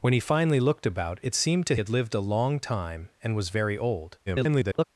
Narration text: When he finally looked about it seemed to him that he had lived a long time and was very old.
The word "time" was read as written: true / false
true